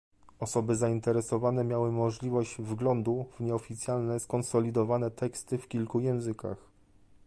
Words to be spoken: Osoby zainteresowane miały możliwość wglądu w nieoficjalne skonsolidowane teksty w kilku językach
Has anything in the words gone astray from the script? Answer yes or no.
no